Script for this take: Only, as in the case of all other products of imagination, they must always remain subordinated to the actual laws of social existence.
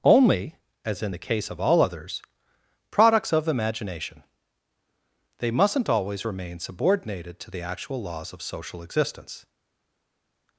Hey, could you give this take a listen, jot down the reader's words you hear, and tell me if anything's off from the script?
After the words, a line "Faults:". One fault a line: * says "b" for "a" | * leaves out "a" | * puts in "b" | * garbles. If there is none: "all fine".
Only, as in the case of all others products of imagination, they mustn't always remain subordinated to the actual laws of social existence.
Faults:
* says "others" for "other"
* says "mustn't" for "must"